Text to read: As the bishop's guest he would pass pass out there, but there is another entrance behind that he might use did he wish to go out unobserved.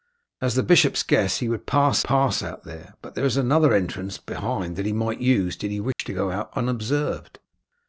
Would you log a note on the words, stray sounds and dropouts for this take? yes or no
yes